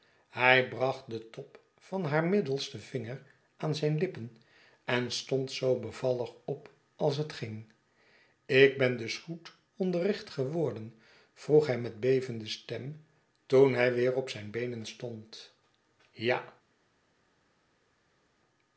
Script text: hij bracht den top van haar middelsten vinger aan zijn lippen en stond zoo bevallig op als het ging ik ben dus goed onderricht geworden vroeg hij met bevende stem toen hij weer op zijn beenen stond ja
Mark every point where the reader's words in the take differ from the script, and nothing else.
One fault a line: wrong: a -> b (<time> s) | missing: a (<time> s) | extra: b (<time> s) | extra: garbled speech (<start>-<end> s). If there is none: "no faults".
no faults